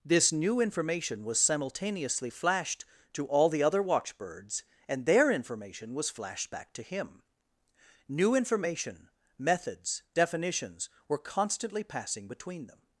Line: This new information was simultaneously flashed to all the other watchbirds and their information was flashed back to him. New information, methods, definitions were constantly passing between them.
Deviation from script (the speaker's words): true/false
false